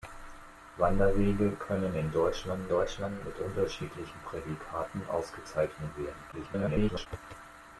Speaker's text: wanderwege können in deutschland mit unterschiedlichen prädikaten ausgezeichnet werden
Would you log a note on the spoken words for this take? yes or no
yes